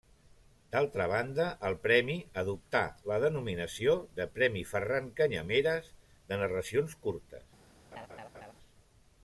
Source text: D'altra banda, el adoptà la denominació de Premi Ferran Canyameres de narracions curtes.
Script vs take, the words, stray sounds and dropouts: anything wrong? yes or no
yes